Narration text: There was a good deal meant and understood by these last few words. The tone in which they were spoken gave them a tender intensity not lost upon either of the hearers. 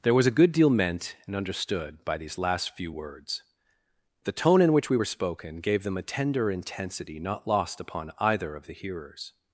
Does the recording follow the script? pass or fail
fail